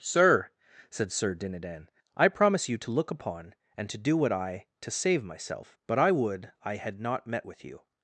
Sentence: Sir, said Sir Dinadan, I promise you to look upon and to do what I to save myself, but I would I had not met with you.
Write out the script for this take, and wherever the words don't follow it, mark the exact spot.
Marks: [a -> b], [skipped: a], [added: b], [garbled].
Sir, said Sir Dinadan, I promise you to look upon and to do what I to save myself, but I would I had not met with you.